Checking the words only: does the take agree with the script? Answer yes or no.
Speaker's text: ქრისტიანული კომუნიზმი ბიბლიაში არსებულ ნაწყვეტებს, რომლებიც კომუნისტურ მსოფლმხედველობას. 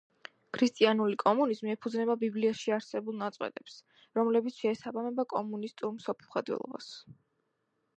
no